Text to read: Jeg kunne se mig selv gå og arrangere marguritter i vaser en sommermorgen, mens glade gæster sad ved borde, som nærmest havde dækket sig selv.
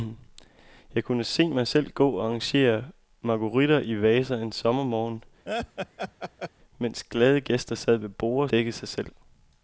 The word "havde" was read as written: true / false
false